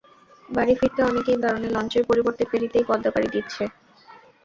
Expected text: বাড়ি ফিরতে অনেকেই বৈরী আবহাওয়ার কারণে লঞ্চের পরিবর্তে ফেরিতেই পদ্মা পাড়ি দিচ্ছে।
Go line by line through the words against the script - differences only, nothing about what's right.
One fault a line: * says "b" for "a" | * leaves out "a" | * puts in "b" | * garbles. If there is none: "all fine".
* leaves out "বৈরী আবহাওয়ার"